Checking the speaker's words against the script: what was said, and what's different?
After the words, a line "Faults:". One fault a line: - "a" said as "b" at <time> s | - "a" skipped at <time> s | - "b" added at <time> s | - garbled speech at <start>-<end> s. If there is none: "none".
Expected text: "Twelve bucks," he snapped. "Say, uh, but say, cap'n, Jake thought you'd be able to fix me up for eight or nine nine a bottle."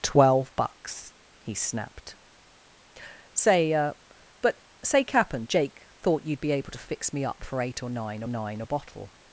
"Twelve bucks," he snapped. "Say, uh, but say, cap'n, Jake thought you'd be able to fix me up for eight or nine nine a bottle."
Faults:
none